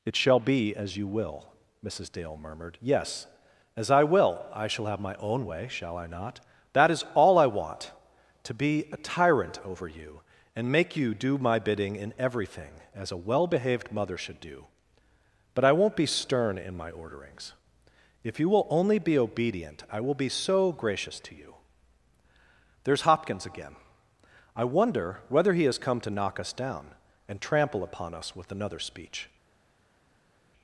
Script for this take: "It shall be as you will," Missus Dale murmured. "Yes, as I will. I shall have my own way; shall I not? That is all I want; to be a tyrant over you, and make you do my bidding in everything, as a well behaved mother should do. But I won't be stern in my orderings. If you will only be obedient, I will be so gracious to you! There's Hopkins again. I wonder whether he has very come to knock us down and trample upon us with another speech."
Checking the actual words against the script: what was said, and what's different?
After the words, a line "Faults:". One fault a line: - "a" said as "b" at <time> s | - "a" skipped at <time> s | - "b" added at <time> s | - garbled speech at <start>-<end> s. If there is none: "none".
"It shall be as you will," Missus Dale murmured. "Yes, as I will. I shall have my own way; shall I not? That is all I want; to be a tyrant over you, and make you do my bidding in everything, as a well behaved mother should do. But I won't be stern in my orderings. If you will only be obedient, I will be so gracious to you! There's Hopkins again. I wonder whether he has come to knock us down and trample upon us with another speech."
Faults:
- "very" skipped at 25.8 s